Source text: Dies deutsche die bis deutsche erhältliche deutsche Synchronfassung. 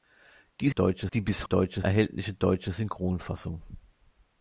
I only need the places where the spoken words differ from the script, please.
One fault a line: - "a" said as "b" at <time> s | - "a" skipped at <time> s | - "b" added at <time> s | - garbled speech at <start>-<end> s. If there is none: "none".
none